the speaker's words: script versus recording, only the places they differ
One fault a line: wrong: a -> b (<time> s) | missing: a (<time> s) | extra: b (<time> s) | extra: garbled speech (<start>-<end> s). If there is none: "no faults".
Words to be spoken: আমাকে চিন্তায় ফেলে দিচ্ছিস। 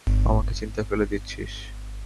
no faults